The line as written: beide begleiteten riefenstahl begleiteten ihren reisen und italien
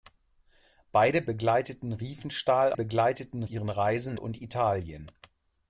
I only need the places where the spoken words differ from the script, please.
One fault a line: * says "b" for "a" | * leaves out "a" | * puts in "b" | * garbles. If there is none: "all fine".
all fine